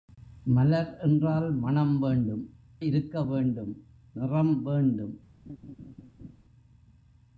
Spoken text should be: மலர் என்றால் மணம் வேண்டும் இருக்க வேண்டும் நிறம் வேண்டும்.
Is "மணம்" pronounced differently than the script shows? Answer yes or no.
no